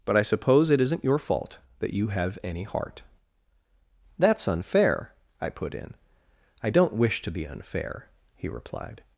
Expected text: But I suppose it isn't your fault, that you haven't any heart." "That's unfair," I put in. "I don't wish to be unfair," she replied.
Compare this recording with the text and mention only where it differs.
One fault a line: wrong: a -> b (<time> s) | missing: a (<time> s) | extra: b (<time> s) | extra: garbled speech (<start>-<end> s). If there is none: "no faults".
wrong: haven't -> have (2.1 s)
wrong: she -> he (8.3 s)